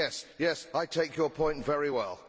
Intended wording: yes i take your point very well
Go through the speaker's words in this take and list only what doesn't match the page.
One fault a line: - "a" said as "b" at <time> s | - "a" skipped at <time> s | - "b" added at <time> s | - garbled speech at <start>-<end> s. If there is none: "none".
none